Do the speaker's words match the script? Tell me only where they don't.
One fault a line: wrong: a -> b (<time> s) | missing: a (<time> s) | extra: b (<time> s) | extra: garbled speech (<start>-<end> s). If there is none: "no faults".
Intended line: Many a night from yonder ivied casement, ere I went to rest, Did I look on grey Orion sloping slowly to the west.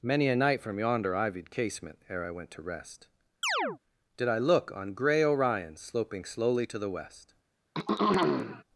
no faults